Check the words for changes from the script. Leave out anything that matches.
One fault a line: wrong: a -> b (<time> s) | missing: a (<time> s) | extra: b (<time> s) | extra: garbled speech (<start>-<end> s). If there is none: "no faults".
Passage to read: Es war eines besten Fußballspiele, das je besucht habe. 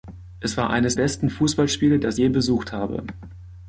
no faults